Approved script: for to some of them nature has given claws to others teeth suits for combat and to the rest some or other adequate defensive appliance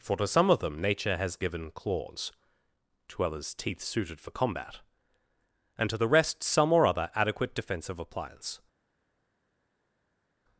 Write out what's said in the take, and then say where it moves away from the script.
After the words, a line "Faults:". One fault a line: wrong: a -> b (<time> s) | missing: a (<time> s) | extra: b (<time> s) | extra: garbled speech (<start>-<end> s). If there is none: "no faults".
for to some of them nature has given claws to others teeth suited for combat and to the rest some or other adequate defensive appliance
Faults:
wrong: suits -> suited (3.8 s)